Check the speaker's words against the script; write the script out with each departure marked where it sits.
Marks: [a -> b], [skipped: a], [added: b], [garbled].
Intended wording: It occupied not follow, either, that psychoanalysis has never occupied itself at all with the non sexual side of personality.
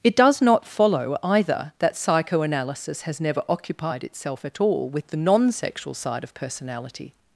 It [occupied -> does] not follow, either, that psychoanalysis has never occupied itself at all with the non sexual side of personality.